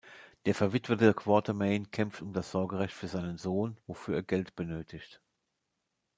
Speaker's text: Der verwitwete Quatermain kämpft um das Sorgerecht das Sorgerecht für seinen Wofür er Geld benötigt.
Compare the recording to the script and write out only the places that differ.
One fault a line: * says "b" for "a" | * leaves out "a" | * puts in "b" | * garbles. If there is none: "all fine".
* leaves out "das Sorgerecht"
* puts in "Sohn"